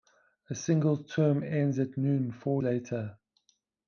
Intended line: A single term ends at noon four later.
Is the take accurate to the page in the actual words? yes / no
yes